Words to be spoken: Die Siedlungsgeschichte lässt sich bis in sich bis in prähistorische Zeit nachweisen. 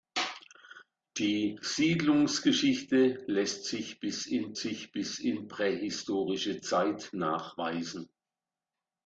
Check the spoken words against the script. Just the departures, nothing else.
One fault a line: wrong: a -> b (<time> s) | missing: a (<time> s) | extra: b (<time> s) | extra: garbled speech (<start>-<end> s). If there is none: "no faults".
no faults